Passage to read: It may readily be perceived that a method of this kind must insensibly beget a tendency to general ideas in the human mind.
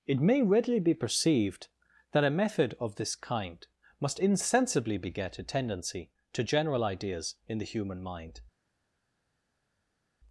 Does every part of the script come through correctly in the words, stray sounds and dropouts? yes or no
yes